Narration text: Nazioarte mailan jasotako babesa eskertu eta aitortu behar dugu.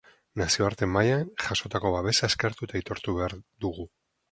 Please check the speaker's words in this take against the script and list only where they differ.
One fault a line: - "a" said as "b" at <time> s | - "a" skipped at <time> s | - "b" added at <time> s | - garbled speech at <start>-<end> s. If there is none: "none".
none